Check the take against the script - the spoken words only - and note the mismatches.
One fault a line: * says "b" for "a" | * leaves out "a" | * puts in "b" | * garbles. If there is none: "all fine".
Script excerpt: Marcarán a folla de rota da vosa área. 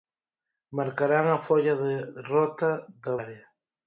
* leaves out "vosa"